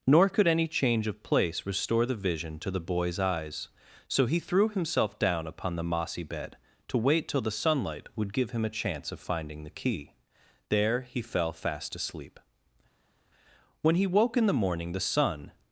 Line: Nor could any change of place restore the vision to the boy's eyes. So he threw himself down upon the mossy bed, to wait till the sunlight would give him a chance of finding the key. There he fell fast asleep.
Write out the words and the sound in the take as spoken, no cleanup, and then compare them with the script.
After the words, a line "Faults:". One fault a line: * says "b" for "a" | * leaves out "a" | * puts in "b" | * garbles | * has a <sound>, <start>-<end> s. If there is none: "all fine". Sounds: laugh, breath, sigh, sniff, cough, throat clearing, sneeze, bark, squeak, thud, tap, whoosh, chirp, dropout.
Nor could any change of place restore the vision to the boy's eyes. So he threw himself down upon the mossy bed, to wait till the sunlight would give him a chance of finding the key. There he fell fast asleep. When he woke in the morning the sun
Faults:
* puts in "When he woke in the morning the sun"